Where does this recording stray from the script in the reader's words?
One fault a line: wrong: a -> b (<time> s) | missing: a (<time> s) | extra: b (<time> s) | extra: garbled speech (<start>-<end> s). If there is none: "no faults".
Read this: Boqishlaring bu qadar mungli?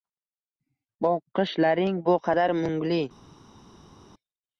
no faults